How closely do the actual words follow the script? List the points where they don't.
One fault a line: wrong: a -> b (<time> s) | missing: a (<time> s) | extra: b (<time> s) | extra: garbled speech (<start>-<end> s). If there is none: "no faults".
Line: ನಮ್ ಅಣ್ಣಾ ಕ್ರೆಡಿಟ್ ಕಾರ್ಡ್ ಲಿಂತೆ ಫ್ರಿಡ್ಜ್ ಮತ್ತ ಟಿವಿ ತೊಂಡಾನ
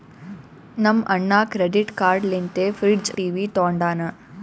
missing: ಮತ್ತ (3.1 s)